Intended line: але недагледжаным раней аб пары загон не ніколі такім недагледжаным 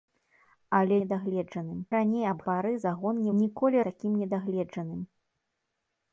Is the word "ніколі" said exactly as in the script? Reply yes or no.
yes